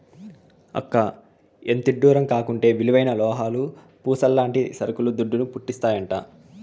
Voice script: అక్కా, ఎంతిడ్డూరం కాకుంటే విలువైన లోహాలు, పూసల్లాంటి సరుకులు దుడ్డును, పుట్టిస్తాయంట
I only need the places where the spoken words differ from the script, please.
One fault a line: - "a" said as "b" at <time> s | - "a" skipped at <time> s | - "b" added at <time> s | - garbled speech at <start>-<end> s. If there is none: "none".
none